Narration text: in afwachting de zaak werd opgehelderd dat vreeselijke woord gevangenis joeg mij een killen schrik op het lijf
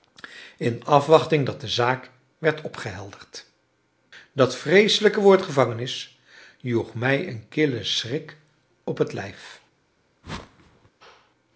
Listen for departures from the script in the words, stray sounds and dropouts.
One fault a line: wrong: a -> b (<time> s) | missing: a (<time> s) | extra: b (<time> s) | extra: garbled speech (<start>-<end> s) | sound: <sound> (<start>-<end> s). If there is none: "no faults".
extra: dat (1.4 s)
sound: whoosh (10.2-10.9 s)